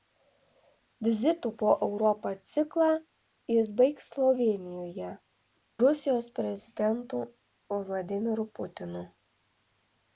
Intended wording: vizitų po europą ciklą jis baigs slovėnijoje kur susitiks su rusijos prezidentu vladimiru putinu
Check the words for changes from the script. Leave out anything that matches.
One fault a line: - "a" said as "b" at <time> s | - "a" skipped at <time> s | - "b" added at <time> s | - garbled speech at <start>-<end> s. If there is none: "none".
- "kur susitiks su" skipped at 5.1 s